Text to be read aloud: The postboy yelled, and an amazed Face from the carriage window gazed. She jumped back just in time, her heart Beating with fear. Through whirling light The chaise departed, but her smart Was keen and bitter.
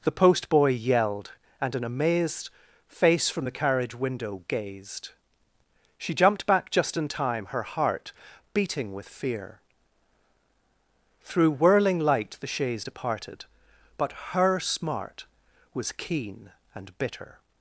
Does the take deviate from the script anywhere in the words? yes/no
no